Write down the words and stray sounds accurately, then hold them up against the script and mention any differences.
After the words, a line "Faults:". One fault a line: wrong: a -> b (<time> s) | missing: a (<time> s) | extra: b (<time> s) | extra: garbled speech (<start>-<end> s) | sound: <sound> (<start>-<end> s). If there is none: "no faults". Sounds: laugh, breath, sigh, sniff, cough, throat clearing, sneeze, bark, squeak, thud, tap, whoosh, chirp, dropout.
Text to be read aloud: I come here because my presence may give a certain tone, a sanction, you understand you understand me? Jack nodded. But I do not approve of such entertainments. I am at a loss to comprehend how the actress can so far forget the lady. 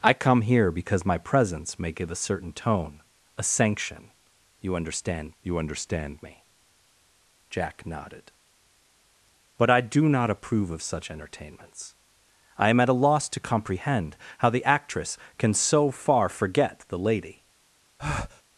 I come here because my presence may give a certain tone, a sanction, you understand you understand me? Jack nodded. But I do not approve of such entertainments. I am at a loss to comprehend how the actress can so far forget the lady.
Faults:
sound: breath (18.0-18.4 s)